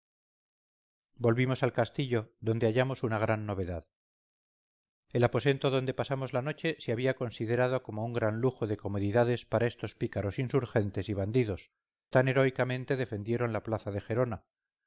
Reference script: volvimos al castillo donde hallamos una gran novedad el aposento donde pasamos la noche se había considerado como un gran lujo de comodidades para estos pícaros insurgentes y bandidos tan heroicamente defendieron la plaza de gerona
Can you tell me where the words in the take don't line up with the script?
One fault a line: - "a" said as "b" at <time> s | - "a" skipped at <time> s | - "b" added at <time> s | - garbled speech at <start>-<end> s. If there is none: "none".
none